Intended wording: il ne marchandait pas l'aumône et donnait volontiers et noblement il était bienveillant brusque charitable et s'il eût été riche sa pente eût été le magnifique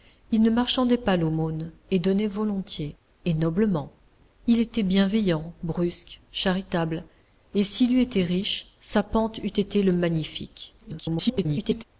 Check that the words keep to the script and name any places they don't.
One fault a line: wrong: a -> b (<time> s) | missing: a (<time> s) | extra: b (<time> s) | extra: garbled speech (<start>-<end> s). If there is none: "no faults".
extra: garbled speech (10.8-11.8 s)